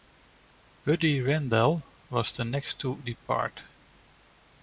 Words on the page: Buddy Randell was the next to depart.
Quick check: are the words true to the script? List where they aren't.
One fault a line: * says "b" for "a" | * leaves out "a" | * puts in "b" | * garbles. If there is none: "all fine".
all fine